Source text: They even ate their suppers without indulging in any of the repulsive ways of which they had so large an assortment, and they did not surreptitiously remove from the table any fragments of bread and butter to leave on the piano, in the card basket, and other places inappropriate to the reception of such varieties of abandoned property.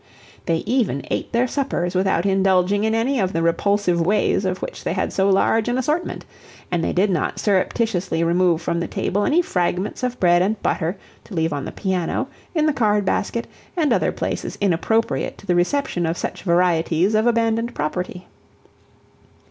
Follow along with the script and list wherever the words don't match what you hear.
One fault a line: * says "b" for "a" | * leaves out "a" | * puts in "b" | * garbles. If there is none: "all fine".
all fine